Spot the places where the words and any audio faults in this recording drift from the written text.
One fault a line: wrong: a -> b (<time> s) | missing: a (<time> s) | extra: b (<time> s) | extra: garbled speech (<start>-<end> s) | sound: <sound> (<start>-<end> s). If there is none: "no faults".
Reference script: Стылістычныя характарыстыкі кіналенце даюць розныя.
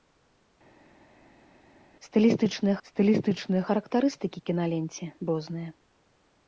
extra: стылістычныя (2.9 s)
missing: даюць (5.0 s)